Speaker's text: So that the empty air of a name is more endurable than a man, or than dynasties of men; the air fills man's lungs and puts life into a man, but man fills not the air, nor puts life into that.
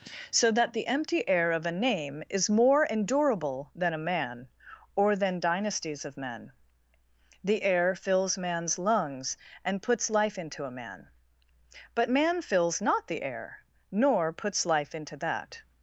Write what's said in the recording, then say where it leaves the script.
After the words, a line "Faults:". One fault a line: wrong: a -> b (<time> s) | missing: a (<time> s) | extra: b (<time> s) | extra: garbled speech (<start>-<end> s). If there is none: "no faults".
So that the empty air of a name is more endurable than a man, or than dynasties of men; the air fills man's lungs and puts life into a man, but man fills not the air, nor puts life into that.
Faults:
no faults